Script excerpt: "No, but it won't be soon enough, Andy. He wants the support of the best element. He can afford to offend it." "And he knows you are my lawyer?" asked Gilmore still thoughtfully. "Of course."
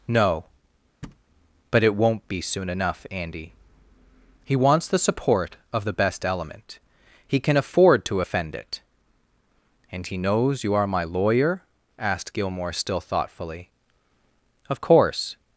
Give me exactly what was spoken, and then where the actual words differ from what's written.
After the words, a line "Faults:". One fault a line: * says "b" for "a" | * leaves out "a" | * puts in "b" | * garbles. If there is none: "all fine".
"No, but it won't be soon enough, Andy. He wants the support of the best element. He can afford to offend it." "And he knows you are my lawyer?" asked Gilmore still thoughtfully. "Of course."
Faults:
all fine